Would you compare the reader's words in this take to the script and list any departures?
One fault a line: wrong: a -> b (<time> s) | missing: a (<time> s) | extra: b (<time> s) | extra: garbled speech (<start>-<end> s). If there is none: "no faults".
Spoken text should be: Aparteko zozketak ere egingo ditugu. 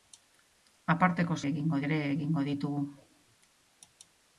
wrong: zozketak -> egingo (1.5 s)